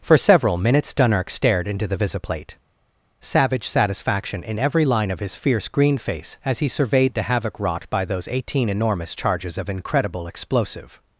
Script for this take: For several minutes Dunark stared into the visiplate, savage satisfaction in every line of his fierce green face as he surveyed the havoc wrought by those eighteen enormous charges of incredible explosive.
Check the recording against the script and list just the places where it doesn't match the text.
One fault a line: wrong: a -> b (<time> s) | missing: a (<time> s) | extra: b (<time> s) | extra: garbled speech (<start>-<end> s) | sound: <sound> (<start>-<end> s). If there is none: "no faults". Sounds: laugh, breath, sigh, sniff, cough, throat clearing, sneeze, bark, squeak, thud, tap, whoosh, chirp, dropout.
no faults